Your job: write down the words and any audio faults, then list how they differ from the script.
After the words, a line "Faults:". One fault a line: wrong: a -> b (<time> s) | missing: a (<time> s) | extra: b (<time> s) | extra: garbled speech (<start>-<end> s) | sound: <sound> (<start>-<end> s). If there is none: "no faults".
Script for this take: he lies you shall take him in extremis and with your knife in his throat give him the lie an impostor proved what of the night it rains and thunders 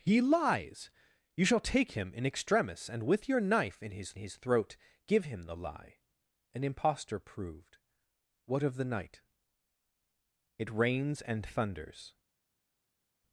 he lies you shall take him in extremis and with your knife in his his throat give him the lie an impostor proved what of the night it rains and thunders
Faults:
extra: his (4.2 s)